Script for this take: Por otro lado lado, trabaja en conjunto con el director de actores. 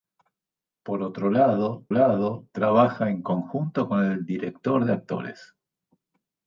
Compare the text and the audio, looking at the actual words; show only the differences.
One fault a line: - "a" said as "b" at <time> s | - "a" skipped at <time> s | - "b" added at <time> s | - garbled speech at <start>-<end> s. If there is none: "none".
none